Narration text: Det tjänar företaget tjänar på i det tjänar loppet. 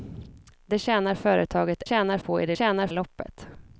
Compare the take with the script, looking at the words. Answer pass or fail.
pass